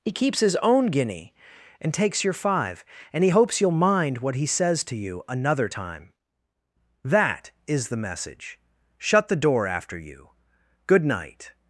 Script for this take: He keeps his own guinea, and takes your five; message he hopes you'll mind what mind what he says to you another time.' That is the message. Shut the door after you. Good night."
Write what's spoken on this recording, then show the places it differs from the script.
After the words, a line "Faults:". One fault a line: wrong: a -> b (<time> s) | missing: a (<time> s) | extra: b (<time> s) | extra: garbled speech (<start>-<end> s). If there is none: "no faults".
He keeps his own guinea, and takes your five; and he hopes you'll mind what he says to you another time.' That is the message. Shut the door after you. Good night."
Faults:
wrong: message -> and (3.1 s)
missing: mind what (4.3 s)